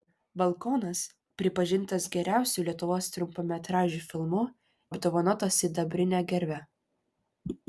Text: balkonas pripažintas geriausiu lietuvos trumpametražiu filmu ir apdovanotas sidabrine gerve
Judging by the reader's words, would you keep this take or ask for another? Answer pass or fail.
fail